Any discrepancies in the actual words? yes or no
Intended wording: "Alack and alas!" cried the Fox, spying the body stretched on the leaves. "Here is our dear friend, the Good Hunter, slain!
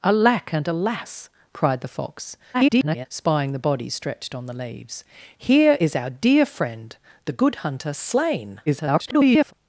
yes